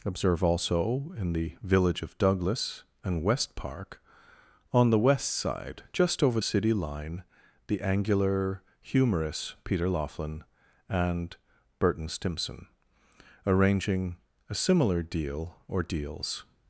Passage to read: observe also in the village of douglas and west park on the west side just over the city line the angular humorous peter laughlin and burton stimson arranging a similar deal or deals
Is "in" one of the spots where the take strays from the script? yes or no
no